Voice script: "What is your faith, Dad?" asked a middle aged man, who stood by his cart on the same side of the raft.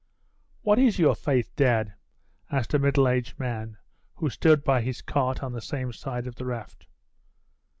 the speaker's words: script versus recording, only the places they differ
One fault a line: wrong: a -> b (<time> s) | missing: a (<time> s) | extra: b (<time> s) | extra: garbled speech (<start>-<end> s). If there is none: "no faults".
no faults